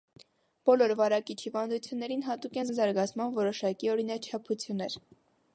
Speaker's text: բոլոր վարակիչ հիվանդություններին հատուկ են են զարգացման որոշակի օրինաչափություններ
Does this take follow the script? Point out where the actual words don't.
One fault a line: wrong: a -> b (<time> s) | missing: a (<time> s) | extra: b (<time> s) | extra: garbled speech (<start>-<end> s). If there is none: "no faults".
no faults